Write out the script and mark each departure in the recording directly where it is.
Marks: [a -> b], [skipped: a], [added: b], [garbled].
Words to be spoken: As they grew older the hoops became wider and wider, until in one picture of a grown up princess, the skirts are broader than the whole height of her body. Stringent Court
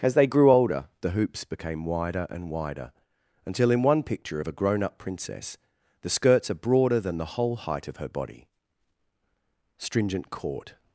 As they grew older the hoops became wider and wider, until in one picture of a grown up princess, the skirts are broader than the whole height of her body. Stringent Court